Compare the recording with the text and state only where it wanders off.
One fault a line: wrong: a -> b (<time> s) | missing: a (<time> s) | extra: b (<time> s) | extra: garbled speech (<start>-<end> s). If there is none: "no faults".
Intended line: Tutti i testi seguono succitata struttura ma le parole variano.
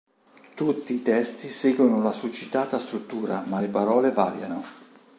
extra: la (2.0 s)